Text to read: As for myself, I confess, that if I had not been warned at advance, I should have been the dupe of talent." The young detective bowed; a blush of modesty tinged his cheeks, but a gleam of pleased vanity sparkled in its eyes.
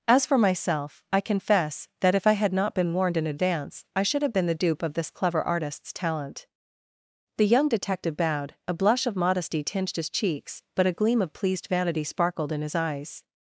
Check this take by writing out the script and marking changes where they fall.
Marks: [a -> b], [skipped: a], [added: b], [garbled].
As for myself, I confess, that if I had not been warned [at -> in] advance, I should have been the dupe of [added: this clever artist's] talent." The young detective bowed; a blush of modesty tinged his cheeks, but a gleam of pleased vanity sparkled in [its -> his] eyes.